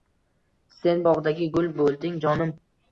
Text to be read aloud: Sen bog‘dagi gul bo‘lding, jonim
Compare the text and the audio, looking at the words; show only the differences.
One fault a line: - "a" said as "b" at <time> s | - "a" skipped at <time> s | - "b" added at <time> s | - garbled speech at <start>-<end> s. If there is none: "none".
none